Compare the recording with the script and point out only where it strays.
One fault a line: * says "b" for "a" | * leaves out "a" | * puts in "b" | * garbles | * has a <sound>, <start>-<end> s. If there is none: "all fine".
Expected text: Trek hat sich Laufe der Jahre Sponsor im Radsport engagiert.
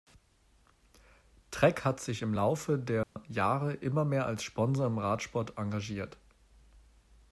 * puts in "im"
* has a dropout, 3.0-3.2 s
* puts in "immer mehr als"